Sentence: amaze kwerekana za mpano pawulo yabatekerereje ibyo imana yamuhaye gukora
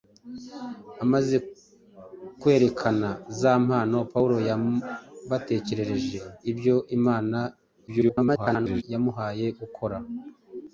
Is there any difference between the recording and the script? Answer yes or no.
yes